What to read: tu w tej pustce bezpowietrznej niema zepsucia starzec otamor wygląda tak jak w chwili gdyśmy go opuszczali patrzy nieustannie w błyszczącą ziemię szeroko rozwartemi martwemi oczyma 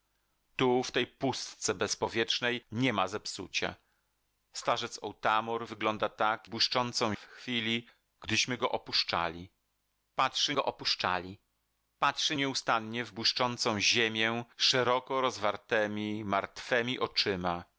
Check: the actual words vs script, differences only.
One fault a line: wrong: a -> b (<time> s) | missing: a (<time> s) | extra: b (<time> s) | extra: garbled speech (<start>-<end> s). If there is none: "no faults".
wrong: jak -> błyszczącą (6.5 s)
extra: go opuszczali patrzy (10.5 s)